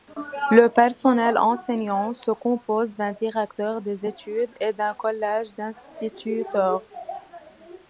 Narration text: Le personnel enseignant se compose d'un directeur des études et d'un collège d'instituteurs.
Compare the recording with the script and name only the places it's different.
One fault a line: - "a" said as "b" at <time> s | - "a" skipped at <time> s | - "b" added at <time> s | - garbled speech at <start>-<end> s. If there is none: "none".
none